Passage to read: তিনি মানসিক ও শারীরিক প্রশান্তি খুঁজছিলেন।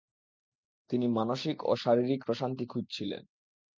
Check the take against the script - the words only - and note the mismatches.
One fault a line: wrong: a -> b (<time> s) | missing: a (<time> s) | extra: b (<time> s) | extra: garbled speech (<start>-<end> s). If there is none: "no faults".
no faults